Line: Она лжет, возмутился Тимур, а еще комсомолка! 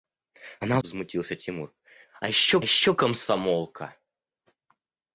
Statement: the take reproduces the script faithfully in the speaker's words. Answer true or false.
false